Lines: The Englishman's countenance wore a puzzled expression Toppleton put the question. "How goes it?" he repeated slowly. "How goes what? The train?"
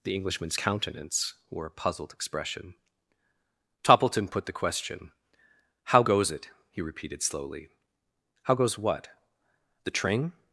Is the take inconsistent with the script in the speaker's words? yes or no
no